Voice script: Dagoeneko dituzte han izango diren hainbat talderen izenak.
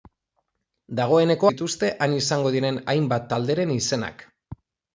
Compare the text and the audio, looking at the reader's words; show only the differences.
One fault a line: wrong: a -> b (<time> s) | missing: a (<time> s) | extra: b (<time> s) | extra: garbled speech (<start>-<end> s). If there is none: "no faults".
no faults